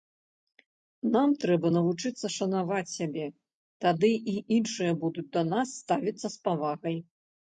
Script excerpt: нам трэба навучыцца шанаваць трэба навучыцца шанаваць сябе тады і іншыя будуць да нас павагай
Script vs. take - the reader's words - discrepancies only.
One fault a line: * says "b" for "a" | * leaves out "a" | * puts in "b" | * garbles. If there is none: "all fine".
* leaves out "трэба навучыцца шанаваць"
* puts in "ставіцца з"